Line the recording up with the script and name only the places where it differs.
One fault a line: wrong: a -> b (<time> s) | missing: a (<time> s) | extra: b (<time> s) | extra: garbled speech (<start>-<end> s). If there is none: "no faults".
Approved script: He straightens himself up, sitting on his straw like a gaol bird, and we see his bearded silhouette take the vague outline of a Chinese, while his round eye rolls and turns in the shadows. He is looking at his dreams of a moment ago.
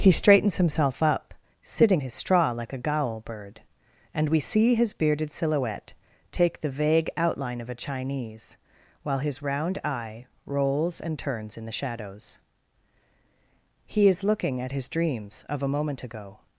missing: on (2.0 s)